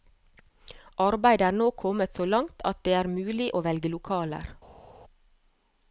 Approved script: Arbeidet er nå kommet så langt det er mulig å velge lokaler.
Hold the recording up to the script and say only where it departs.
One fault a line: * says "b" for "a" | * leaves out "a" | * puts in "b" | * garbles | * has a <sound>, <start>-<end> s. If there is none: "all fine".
* puts in "at"